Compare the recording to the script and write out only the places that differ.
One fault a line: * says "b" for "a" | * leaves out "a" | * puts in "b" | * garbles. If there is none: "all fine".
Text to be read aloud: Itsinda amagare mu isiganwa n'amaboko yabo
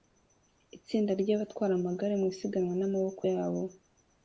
* puts in "ry'abatwara"